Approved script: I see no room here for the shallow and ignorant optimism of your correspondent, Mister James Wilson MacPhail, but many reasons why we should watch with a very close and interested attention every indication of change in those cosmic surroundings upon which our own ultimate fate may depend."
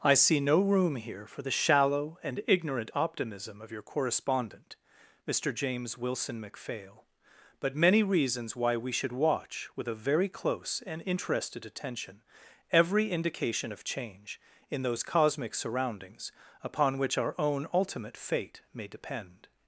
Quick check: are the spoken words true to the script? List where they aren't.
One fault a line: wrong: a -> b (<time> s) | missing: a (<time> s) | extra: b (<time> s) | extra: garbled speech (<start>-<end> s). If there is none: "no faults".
no faults